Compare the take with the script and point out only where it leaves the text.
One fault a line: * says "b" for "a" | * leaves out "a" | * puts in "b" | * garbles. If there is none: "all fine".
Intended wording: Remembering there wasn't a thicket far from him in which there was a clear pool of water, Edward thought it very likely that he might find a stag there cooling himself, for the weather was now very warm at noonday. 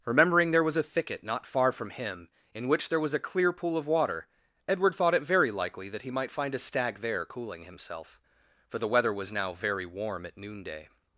* says "was" for "wasn't"
* puts in "not"